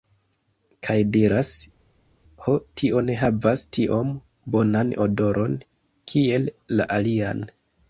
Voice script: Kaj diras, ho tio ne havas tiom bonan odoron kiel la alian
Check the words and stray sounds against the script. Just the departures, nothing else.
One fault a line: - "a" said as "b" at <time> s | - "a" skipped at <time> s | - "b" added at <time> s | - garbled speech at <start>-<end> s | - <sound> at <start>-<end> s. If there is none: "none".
none